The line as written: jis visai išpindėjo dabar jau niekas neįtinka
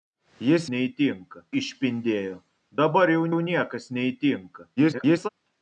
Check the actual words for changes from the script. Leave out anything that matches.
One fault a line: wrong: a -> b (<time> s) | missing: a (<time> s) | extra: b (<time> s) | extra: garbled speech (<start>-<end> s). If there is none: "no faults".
wrong: visai -> neįtinka (0.8 s)
extra: jau (3.3 s)
extra: garbled speech (4.8-5.3 s)